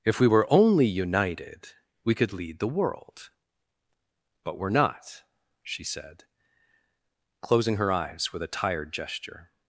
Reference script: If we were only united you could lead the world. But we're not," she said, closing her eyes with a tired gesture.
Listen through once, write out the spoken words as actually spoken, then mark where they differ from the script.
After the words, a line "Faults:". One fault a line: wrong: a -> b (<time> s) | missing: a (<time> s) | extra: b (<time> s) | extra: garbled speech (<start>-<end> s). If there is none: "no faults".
If we were only united we could lead the world. But we're not," she said, closing her eyes with a tired gesture.
Faults:
wrong: you -> we (2.0 s)